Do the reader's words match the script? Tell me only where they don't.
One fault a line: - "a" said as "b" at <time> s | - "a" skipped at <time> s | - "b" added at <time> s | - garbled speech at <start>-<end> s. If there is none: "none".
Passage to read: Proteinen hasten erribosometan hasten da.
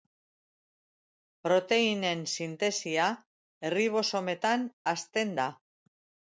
- "hasten" said as "sintesia" at 2.4 s